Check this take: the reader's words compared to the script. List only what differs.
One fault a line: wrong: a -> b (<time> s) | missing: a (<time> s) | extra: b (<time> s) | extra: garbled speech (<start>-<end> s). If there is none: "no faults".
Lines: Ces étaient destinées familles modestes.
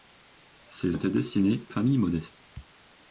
no faults